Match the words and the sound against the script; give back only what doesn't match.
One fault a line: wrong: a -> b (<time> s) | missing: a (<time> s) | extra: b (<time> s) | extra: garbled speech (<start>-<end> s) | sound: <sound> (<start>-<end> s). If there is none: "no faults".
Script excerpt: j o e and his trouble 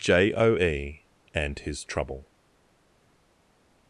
no faults